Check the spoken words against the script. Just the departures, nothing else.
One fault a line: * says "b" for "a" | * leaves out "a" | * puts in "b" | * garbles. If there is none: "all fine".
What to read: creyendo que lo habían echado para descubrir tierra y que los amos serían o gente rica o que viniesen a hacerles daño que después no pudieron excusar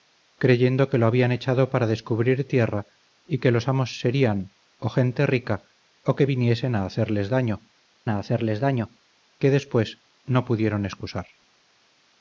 * puts in "a hacerles daño"